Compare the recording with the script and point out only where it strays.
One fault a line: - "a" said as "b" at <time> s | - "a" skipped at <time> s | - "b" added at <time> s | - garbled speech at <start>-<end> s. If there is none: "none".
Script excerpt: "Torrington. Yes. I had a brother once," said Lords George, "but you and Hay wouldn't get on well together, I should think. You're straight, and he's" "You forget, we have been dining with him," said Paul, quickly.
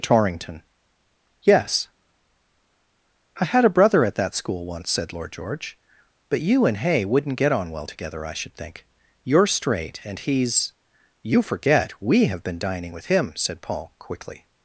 - "at that school" added at 4.0 s
- "Lords" said as "Lord" at 5.1 s